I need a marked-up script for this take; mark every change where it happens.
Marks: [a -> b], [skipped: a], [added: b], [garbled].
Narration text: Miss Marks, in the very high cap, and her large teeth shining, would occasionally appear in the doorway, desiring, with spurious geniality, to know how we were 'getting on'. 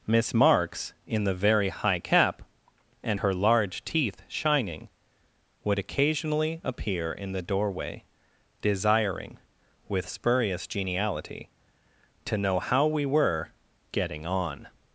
Miss Marks, in the very high cap, and her large teeth shining, would occasionally appear in the doorway, desiring, with spurious geniality, to know how we were 'getting on'.